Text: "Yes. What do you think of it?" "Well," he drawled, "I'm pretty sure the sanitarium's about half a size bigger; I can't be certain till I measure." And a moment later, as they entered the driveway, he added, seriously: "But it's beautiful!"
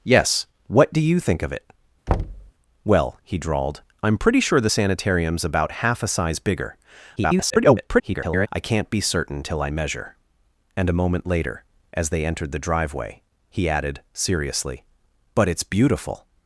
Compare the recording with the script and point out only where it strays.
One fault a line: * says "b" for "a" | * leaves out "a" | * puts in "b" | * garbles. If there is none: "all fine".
* garbles